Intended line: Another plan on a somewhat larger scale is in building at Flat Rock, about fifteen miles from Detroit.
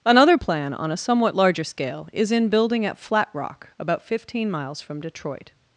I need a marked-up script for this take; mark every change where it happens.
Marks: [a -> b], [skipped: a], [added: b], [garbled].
Another plan on a somewhat larger scale is in building at Flat Rock, about fifteen miles from Detroit.